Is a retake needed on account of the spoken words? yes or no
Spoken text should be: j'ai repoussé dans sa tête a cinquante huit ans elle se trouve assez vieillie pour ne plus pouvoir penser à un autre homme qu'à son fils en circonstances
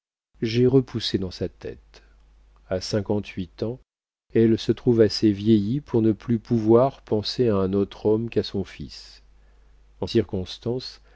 no